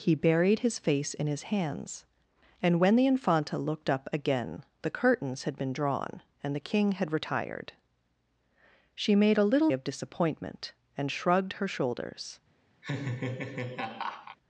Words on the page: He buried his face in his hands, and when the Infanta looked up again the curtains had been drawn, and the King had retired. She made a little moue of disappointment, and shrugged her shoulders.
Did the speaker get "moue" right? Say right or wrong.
wrong